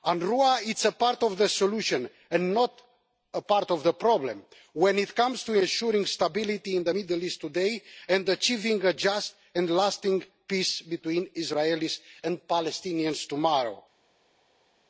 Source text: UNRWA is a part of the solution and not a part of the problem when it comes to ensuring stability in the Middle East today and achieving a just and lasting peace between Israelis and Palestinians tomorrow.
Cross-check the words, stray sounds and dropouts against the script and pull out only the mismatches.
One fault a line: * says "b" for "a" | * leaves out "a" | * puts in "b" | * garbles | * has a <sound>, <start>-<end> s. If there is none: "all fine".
all fine